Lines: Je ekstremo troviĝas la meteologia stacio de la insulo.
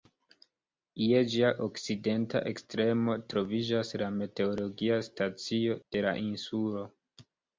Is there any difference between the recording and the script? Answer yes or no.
yes